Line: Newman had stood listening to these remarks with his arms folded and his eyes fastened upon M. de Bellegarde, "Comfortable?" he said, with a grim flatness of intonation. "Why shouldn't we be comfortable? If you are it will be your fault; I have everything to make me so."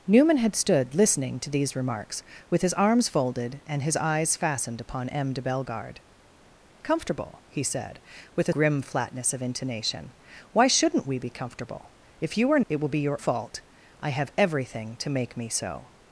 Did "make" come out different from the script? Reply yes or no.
no